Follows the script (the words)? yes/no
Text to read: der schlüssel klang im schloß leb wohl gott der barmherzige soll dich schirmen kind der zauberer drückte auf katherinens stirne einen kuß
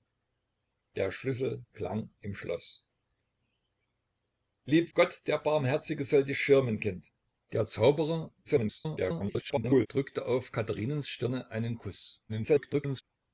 no